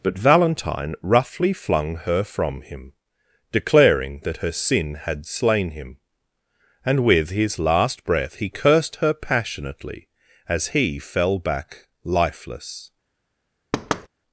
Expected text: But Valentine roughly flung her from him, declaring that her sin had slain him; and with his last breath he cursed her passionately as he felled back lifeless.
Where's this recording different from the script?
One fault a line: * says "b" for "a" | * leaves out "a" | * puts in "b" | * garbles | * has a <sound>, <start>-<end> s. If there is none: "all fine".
* says "fell" for "felled"
* has a thud, 13.7-14.1 s